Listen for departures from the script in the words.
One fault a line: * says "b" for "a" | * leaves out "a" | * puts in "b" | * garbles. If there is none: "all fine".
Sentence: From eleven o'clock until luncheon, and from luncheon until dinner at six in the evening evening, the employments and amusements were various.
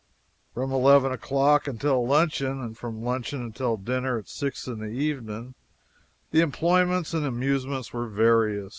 * leaves out "evening"